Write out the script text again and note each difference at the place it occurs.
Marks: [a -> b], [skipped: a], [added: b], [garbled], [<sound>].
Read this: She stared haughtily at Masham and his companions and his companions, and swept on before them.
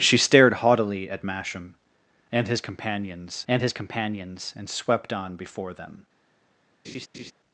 She stared haughtily at Masham and his companions and his companions, and swept on before them. [laugh]